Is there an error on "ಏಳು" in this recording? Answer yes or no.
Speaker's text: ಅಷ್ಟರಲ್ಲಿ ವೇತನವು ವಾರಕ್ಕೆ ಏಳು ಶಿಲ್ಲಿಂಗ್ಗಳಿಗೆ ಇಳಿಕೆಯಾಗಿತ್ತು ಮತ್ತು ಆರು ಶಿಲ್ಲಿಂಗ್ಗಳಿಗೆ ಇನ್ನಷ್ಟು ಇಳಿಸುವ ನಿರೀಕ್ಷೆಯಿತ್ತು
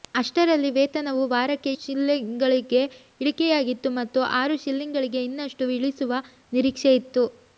yes